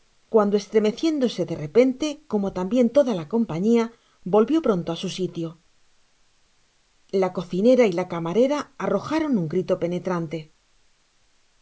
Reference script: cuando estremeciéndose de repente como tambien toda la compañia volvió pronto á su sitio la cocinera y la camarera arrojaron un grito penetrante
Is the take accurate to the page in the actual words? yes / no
yes